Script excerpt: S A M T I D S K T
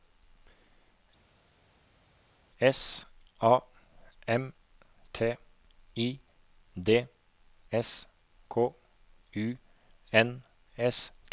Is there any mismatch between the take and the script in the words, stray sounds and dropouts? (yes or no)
yes